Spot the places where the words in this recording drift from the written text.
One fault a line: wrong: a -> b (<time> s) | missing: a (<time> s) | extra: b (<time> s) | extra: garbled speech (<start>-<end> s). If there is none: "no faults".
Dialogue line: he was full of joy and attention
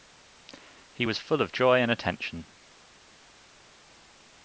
no faults